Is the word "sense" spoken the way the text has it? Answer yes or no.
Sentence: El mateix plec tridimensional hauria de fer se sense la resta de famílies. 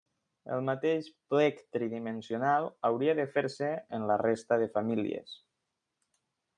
no